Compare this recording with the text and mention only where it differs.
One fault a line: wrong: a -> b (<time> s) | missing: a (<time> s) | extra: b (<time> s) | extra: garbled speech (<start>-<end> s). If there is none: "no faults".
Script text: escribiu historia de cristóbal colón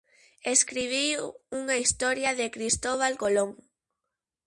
extra: unha (1.6 s)